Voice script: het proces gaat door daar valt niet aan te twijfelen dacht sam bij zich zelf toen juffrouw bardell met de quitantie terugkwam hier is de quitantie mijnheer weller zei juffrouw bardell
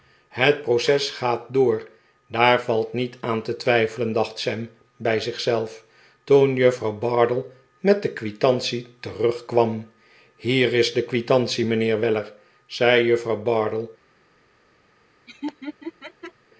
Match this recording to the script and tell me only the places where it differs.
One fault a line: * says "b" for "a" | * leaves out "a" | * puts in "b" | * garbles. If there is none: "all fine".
all fine